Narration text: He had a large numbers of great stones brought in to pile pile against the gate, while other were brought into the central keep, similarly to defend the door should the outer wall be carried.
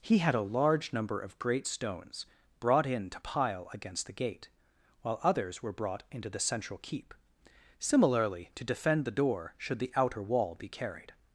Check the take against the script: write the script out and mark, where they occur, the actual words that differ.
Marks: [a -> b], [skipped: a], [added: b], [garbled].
He had a large [numbers -> number] of great stones brought in to pile [skipped: pile] against the gate, while [other -> others] were brought into the central keep, similarly to defend the door should the outer wall be carried.